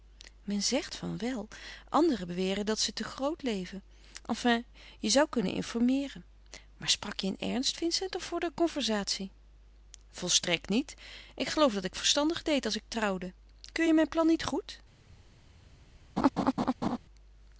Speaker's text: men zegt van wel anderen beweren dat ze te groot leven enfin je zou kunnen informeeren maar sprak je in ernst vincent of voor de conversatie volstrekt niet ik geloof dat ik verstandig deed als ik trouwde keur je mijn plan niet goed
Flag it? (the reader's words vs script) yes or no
no